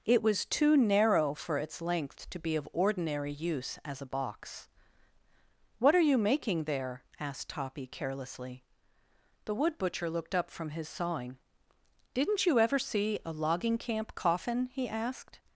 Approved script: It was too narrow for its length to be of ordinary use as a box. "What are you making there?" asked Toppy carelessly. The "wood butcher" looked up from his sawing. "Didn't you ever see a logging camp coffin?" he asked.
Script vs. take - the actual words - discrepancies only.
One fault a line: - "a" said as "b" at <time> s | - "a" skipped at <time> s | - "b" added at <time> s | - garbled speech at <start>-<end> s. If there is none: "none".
none